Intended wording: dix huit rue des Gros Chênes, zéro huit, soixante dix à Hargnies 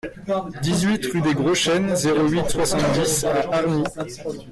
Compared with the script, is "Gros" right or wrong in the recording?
right